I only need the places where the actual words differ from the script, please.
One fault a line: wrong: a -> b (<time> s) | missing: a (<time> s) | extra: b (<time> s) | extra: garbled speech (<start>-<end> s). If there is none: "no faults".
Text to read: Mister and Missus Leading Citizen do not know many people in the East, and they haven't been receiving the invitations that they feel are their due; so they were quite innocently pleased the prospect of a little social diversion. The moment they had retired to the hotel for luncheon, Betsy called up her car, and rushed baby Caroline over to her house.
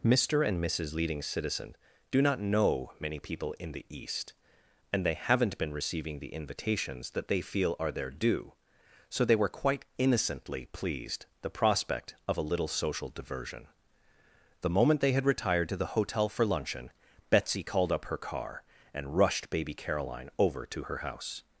no faults